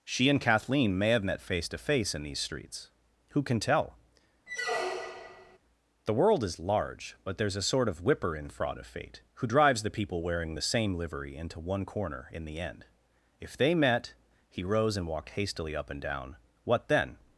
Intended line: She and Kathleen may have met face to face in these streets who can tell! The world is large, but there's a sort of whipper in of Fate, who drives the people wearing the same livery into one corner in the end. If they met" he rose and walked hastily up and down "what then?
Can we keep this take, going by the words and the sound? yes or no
no